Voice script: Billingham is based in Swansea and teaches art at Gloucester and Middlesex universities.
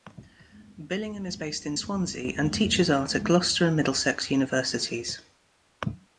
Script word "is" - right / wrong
right